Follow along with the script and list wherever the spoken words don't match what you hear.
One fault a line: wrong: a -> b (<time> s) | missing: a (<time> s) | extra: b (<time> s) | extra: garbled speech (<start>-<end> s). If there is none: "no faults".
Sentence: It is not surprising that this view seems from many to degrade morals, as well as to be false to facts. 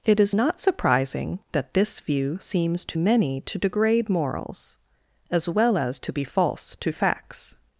wrong: from -> to (2.9 s)